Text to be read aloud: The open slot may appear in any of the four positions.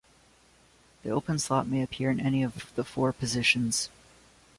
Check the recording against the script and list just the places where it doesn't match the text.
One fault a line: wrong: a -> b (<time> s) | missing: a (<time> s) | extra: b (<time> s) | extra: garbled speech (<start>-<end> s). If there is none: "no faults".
no faults